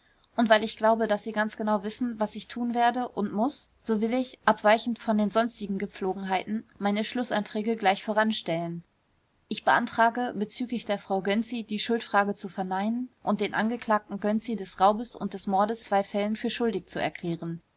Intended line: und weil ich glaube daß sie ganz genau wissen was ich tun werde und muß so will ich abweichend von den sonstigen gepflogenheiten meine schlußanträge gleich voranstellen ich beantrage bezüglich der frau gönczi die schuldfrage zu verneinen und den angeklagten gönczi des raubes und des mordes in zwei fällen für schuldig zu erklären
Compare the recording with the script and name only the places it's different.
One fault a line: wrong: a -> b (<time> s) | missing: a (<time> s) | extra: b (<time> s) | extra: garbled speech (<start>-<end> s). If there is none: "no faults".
missing: in (15.8 s)